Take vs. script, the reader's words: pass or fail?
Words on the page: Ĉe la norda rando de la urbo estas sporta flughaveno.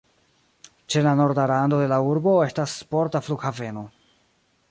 pass